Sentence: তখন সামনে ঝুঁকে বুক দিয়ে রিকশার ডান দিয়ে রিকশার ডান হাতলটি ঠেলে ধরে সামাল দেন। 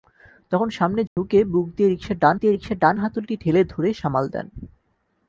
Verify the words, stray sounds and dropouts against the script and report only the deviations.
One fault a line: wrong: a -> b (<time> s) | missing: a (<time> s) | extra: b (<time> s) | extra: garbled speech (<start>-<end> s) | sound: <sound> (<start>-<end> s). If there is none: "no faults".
sound: dropout (1.1-1.2 s)